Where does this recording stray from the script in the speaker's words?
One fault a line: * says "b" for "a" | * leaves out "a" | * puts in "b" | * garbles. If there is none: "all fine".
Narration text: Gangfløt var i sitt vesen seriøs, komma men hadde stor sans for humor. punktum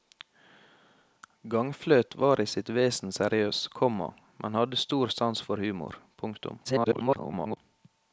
* garbles